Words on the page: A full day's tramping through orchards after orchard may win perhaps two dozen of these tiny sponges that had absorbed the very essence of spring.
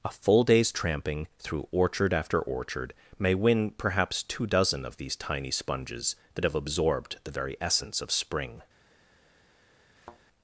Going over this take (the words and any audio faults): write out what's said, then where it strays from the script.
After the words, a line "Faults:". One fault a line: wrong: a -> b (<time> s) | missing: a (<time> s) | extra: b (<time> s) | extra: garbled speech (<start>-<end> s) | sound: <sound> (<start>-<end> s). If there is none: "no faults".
A full day's tramping through orchard after orchard may win perhaps two dozen of these tiny sponges that have absorbed the very essence of spring.
Faults:
wrong: orchards -> orchard (1.7 s)
wrong: had -> have (6.4 s)
sound: thud (10.0-10.2 s)